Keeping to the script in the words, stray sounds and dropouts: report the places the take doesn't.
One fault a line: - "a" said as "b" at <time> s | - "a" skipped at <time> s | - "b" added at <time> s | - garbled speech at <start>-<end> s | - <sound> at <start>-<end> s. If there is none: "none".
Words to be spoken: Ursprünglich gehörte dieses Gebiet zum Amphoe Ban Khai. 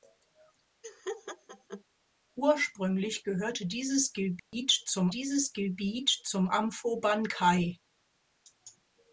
- laugh at 0.8-1.8 s
- dropout at 4.4-4.5 s
- "dieses Gebiet zum" added at 5.1 s